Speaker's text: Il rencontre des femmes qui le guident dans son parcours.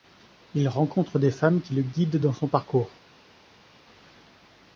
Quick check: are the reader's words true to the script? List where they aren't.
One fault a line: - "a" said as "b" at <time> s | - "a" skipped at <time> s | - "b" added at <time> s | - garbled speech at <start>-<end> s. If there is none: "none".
none